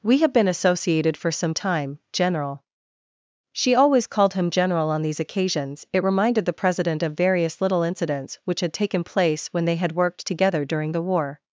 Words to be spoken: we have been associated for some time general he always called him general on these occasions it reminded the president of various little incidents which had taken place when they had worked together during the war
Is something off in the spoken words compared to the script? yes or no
yes